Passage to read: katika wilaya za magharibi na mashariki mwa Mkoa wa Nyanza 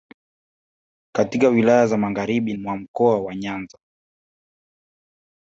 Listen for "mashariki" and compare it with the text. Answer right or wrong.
wrong